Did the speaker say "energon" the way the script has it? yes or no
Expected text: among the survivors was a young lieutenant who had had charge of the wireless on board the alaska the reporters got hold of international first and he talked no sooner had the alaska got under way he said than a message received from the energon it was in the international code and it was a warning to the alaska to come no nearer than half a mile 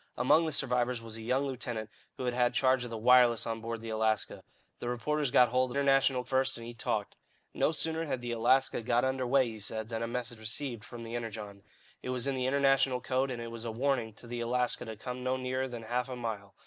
yes